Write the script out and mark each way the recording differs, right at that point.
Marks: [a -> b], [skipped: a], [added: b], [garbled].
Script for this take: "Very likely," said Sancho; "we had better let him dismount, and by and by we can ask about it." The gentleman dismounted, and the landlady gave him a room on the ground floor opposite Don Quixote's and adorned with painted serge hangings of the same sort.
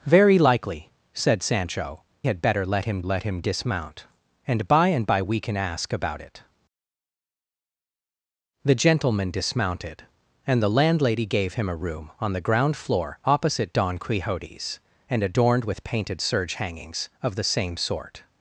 "Very likely," said Sancho; [skipped: "we] had better let him [added: let him] dismount, and by and by we can ask about it." The gentleman dismounted, and the landlady gave him a room on the ground floor opposite Don Quixote's and adorned with painted serge hangings of the same sort.